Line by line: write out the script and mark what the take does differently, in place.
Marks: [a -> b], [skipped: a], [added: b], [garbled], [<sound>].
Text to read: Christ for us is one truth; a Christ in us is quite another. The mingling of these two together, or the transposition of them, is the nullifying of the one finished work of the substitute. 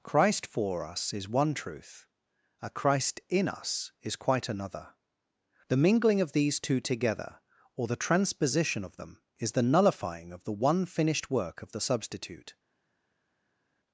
Christ for us is one truth; a Christ in us is quite another. The mingling of these two together, or the transposition of them, is the nullifying of the one finished work of the substitute.